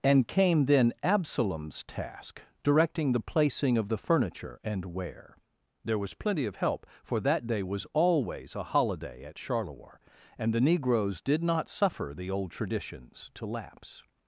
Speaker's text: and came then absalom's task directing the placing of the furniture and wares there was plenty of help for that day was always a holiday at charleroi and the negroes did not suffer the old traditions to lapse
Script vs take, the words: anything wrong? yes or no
yes